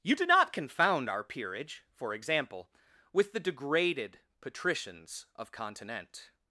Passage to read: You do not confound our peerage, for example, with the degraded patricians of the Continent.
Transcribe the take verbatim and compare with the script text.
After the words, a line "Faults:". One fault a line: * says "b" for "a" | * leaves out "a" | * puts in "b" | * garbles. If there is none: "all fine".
You do not confound our peerage, for example, with the degraded patricians of Continent.
Faults:
* leaves out "the"